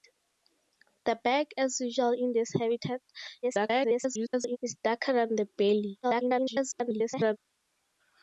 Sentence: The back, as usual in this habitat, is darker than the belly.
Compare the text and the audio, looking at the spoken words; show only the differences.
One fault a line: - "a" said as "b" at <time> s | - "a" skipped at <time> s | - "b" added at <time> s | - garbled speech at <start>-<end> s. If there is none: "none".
- garbled speech at 3.4-4.6 s
- garbled speech at 6.0-7.4 s